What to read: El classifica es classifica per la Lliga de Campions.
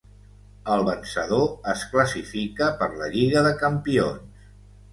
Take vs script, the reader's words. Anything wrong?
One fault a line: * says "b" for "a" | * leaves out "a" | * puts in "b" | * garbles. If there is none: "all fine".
* says "vencedor" for "classifica"